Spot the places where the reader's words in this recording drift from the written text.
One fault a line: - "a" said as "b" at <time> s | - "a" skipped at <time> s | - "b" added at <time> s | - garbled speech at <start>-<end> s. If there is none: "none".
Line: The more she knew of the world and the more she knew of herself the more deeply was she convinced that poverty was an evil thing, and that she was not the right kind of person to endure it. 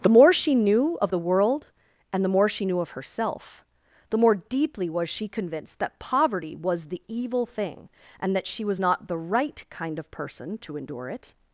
- "an" said as "the" at 6.9 s